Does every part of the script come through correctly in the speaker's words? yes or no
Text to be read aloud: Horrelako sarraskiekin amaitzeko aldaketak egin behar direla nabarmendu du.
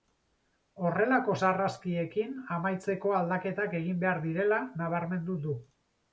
yes